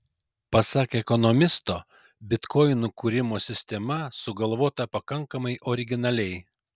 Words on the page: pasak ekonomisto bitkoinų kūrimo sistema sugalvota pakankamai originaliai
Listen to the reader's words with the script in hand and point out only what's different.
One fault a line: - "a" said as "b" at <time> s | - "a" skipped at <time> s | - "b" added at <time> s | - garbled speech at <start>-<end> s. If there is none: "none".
none